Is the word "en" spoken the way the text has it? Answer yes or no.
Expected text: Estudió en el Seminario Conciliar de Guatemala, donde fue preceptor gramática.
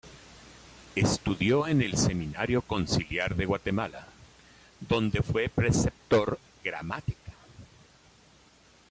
yes